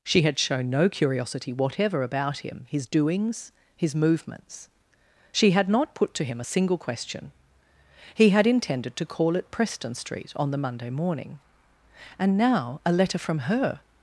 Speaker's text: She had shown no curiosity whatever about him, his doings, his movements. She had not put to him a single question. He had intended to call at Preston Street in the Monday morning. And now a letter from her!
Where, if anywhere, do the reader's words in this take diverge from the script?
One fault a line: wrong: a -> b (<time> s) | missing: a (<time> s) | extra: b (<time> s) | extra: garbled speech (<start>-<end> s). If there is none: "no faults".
wrong: in -> on (10.3 s)